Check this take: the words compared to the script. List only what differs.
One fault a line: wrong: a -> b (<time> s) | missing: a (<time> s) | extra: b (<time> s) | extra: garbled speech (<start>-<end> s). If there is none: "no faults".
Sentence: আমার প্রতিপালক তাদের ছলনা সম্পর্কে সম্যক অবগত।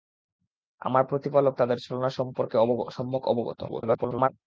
extra: garbled speech (3.7-4.3 s)